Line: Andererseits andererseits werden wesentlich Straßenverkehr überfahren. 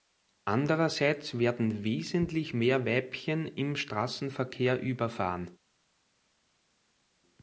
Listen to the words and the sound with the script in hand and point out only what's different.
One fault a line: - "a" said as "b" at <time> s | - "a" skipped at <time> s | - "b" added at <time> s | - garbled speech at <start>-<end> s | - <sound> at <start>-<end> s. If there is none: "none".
- "andererseits" skipped at 1.4 s
- "mehr Weibchen im" added at 2.5 s